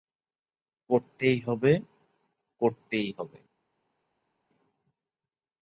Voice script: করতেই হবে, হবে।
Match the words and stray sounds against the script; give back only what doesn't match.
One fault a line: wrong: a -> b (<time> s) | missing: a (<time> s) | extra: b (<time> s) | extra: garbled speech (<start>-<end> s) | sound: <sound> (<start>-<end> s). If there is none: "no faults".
extra: করতেই (2.6 s)